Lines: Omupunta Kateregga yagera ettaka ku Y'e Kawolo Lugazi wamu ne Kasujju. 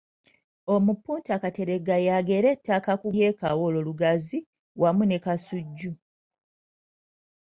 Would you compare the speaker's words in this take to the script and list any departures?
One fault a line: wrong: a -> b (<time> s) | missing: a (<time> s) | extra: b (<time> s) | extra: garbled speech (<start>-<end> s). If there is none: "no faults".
no faults